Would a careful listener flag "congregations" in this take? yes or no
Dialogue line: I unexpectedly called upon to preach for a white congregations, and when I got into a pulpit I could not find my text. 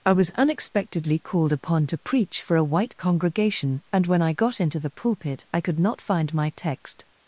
yes